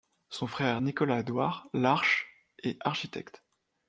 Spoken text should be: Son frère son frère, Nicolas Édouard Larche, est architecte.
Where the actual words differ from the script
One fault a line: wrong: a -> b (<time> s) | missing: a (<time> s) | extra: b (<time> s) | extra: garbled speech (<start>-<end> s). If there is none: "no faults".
missing: son frère (0.8 s)